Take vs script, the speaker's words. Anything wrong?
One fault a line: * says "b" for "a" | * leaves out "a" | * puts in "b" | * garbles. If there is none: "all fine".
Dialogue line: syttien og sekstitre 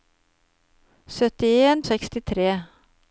all fine